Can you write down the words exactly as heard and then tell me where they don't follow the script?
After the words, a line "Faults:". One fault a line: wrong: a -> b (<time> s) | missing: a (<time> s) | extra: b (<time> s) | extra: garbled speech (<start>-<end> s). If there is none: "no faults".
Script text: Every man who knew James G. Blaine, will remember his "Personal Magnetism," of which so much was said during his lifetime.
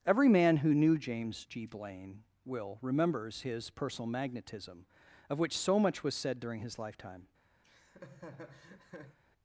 Every man who knew James G. Blaine, will remembers his "Personal Magnetism," of which so much was said during his lifetime.
Faults:
wrong: remember -> remembers (2.8 s)